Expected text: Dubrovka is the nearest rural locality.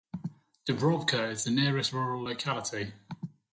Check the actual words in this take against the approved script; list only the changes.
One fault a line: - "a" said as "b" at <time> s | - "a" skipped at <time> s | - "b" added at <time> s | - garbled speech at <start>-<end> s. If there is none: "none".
none